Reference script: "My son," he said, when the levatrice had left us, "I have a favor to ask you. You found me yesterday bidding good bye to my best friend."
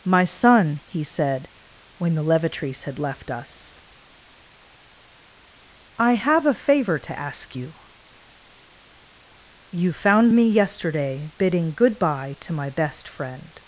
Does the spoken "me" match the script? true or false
true